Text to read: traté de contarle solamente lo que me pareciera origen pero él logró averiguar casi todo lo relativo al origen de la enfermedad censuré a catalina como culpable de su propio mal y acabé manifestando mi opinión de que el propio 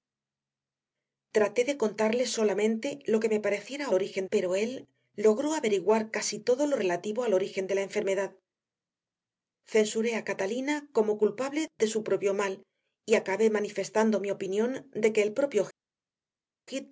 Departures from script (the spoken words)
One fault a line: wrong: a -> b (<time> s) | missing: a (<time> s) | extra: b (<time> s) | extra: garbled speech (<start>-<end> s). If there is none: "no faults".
no faults